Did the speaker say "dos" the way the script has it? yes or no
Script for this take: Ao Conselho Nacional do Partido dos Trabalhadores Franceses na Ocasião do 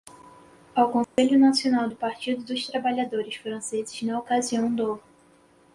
yes